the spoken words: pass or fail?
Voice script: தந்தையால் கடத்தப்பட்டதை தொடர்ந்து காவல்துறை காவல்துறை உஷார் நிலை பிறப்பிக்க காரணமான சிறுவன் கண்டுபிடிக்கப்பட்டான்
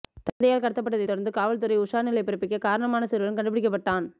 fail